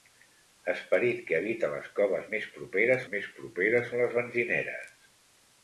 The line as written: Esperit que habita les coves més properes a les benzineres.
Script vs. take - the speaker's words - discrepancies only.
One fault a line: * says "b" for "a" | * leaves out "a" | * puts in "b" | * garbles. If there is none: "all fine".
* puts in "més properes"